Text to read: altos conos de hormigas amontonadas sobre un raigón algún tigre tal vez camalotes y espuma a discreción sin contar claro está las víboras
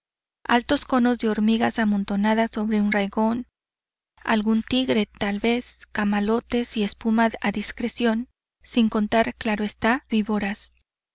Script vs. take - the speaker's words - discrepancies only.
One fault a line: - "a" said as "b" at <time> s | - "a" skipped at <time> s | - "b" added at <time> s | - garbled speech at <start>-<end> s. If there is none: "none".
- "las" skipped at 10.0 s